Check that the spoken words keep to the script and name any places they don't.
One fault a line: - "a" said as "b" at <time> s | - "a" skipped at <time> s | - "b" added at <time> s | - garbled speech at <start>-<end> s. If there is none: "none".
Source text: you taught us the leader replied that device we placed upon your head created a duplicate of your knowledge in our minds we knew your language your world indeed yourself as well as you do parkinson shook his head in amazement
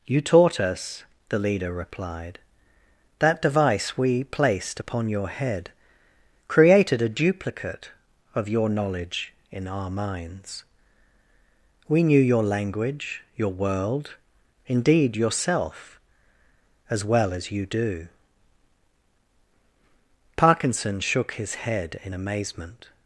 none